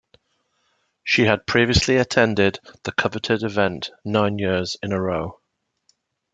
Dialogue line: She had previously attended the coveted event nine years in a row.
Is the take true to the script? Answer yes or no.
yes